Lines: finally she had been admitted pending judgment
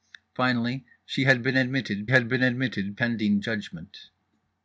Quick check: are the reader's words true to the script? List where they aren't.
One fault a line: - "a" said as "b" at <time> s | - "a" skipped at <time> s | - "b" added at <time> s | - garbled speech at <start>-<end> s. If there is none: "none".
- "had been admitted" added at 2.1 s